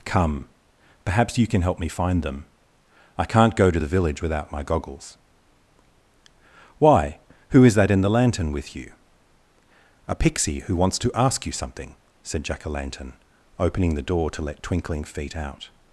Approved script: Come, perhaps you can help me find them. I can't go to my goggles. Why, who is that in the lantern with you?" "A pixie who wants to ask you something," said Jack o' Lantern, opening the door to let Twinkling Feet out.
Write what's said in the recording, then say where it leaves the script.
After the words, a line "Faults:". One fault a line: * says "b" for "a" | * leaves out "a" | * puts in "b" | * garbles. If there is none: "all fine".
Come, perhaps you can help me find them. I can't go to the village without my goggles. Why, who is that in the lantern with you?" "A pixie who wants to ask you something," said Jack o' Lantern, opening the door to let Twinkling Feet out.
Faults:
* puts in "the village without"